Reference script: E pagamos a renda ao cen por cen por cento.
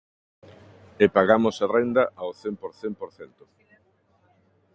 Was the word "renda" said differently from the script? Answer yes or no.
no